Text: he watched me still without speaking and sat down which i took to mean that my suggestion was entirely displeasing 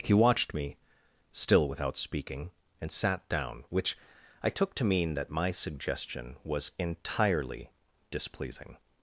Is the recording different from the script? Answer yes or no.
no